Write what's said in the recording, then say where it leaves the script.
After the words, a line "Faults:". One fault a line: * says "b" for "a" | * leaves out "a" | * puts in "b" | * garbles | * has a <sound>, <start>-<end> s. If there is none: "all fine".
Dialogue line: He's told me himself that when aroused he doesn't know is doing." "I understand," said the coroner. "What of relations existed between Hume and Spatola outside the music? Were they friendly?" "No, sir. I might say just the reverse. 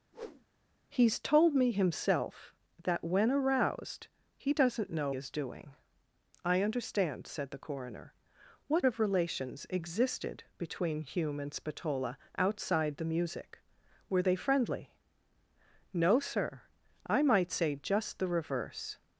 He's told me himself that when aroused he doesn't know is doing." "I understand," said the coroner. "What of relations existed between Hume and Spatola outside the music? Were they friendly?" "No, sir. I might say just the reverse.
Faults:
* has a whoosh, 0.1-0.5 s